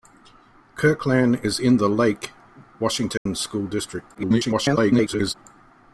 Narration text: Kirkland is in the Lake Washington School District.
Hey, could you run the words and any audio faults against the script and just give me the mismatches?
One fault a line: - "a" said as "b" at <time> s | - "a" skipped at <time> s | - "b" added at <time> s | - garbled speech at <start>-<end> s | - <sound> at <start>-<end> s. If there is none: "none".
- dropout at 3.2-3.3 s
- garbled speech at 4.1-5.3 s